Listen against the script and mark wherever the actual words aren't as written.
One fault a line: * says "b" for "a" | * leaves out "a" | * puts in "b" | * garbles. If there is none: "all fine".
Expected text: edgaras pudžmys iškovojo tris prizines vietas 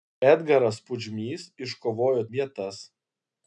* leaves out "tris prizines"